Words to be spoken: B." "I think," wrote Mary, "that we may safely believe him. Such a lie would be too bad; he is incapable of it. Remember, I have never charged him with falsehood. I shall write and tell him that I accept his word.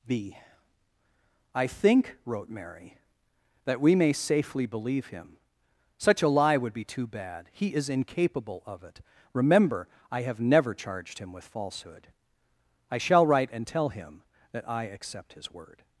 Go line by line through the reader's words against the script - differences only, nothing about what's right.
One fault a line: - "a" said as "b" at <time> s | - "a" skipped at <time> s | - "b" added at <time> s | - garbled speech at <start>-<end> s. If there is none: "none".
none